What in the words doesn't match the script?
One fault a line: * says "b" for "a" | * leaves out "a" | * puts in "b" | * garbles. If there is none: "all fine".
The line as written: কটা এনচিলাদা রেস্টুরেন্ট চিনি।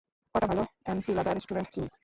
* puts in "ভালো"